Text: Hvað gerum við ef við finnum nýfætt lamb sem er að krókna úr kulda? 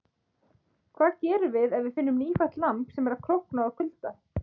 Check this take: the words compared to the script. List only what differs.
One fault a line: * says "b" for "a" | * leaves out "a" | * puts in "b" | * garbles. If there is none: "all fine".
all fine